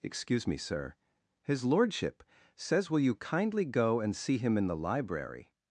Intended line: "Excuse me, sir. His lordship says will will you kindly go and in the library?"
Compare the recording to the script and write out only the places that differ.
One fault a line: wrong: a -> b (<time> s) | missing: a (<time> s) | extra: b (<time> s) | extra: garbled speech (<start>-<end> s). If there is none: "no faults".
missing: will (3.0 s)
extra: see him (4.2 s)